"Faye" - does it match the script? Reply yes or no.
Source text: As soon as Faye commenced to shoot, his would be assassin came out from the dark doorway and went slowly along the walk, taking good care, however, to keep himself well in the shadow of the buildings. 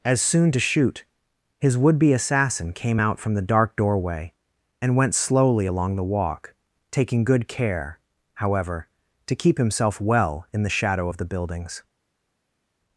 no